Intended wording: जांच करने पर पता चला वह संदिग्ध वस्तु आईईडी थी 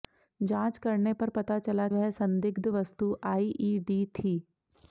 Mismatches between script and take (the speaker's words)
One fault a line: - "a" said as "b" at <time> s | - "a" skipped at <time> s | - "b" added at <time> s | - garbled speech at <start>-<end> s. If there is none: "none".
none